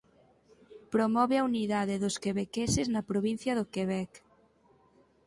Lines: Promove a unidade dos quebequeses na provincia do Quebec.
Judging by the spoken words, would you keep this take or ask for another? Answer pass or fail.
pass